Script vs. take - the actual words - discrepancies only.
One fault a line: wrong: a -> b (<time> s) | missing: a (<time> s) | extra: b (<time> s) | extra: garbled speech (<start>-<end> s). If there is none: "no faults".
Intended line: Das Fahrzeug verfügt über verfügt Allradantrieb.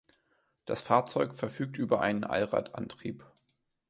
wrong: verfügt -> einen (2.0 s)